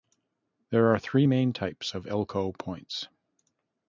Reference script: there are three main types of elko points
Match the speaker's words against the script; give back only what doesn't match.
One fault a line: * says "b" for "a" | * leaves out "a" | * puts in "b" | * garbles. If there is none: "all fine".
all fine